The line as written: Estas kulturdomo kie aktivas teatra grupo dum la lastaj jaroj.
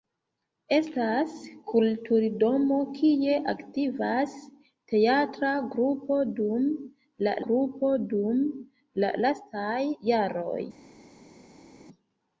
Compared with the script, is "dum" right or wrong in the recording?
right